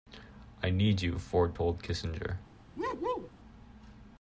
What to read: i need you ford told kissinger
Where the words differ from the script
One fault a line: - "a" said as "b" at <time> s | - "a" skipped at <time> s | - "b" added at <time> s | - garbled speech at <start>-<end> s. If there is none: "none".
none